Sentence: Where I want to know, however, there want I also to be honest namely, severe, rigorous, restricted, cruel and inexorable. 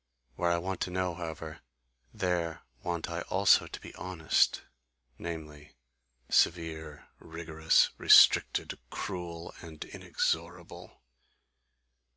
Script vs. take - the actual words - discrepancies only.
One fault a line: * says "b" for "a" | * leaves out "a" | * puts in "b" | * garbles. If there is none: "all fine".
all fine